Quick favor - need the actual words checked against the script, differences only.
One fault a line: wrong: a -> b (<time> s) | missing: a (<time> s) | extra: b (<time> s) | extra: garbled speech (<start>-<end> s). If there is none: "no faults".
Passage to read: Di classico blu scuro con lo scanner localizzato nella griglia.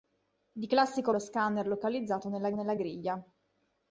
missing: blu scuro con (1.1 s)
extra: nella (2.5 s)